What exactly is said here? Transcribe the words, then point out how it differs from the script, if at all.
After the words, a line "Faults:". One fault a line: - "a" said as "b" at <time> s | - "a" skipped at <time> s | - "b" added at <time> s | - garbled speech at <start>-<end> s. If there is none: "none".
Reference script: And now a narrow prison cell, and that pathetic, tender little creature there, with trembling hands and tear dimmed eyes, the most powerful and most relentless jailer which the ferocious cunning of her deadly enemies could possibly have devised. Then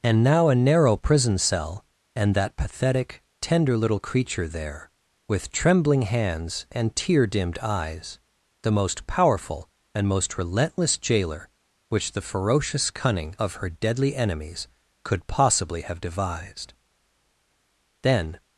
And now a narrow prison cell, and that pathetic, tender little creature there, with trembling hands and tear dimmed eyes, the most powerful and most relentless jailer which the ferocious cunning of her deadly enemies could possibly have devised. Then
Faults:
none